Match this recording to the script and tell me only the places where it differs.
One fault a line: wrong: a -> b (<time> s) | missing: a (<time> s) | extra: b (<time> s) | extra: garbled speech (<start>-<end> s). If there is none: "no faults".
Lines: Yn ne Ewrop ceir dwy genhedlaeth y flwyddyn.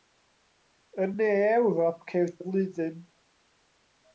missing: dwy genhedlaeth (2.3 s)